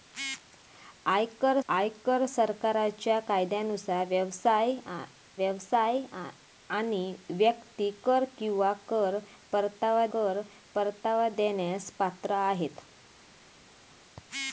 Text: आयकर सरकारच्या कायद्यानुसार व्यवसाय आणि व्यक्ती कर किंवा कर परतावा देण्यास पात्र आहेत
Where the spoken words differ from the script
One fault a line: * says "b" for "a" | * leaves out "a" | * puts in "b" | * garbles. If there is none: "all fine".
* puts in "आयकर"
* puts in "व्यवसाय"
* puts in "कर परतावा"